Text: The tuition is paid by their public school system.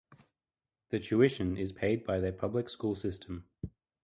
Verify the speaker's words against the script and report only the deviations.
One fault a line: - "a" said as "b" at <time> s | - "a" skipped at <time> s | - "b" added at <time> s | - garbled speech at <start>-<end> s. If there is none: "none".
none